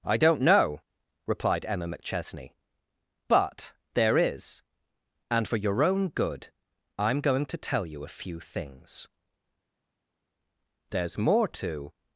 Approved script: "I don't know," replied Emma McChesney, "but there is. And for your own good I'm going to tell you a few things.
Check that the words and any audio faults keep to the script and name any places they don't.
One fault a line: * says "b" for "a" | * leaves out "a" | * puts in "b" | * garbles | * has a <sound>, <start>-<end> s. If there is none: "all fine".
* puts in "There's more to"